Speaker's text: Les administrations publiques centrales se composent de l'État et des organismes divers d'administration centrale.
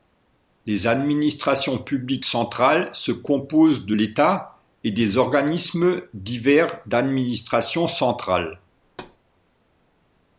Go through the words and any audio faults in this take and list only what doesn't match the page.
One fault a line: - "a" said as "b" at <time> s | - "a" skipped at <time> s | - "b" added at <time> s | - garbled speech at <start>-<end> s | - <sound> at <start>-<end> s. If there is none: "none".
- thud at 8.8-9.2 s